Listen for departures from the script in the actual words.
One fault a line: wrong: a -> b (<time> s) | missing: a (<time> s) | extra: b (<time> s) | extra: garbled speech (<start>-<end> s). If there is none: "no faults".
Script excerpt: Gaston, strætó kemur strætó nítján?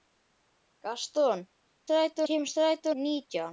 no faults